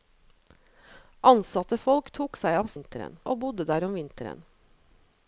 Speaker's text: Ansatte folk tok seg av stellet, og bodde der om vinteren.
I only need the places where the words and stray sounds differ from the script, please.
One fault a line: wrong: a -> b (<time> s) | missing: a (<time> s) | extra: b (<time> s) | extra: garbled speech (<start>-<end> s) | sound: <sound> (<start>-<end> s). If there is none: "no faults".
wrong: stellet -> vinteren (2.7 s)